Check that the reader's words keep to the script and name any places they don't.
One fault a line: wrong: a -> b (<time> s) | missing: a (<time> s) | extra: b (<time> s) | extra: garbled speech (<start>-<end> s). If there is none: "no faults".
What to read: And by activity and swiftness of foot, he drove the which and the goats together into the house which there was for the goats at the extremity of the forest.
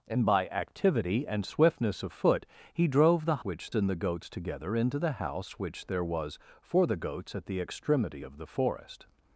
no faults